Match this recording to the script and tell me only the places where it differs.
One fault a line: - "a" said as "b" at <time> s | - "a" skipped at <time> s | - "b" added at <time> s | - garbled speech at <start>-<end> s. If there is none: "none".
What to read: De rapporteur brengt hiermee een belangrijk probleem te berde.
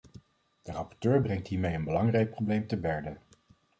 none